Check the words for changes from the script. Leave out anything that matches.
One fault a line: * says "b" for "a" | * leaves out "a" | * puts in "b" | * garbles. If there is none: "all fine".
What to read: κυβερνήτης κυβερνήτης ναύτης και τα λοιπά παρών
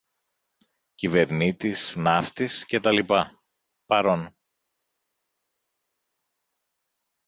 * leaves out "κυβερνήτης"